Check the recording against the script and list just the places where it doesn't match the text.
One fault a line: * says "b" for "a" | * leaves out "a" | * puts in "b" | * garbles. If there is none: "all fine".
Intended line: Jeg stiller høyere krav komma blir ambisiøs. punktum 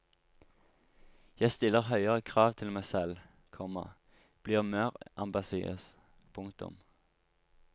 * puts in "til meg selv"
* puts in "mer"